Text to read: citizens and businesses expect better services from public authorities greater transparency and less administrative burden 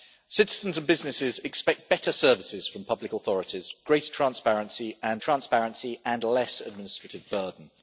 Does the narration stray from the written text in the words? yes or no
yes